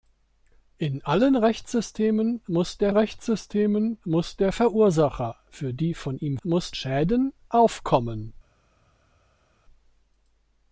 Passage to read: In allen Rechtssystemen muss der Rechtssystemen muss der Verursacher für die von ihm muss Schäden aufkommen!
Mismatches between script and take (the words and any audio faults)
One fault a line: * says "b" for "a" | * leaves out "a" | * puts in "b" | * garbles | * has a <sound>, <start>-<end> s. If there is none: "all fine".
all fine